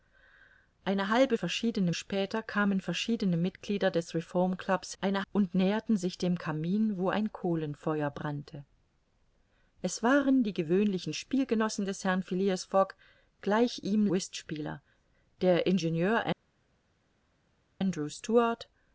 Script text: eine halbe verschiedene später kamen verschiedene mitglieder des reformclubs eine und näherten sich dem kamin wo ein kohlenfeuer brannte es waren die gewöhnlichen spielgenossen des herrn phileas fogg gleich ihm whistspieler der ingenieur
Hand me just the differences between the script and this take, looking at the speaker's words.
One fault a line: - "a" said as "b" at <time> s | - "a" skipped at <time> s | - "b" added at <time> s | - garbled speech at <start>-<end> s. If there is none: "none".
none